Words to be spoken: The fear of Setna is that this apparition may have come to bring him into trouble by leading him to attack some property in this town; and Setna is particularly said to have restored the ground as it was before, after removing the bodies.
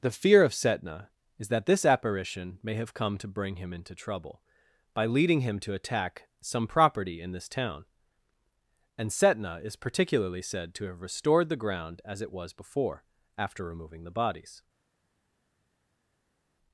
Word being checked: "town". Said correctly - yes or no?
yes